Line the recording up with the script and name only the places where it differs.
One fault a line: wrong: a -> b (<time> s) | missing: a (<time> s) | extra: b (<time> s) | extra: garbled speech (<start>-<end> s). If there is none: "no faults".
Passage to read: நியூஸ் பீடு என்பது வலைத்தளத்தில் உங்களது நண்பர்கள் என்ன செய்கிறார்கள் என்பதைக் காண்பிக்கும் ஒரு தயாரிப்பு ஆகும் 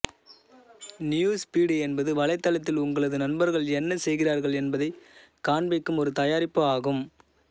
no faults